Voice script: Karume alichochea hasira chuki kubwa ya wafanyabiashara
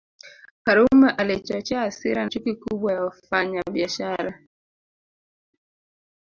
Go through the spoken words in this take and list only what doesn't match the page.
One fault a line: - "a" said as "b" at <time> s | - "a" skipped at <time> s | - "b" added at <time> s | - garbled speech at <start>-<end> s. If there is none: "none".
none